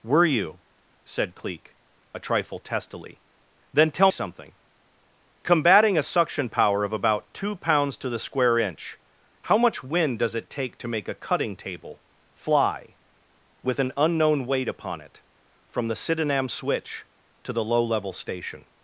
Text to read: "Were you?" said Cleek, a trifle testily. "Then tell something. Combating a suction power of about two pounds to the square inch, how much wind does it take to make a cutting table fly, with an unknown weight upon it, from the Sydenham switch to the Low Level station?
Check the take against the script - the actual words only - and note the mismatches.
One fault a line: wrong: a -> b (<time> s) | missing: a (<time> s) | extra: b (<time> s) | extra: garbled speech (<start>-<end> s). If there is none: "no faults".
no faults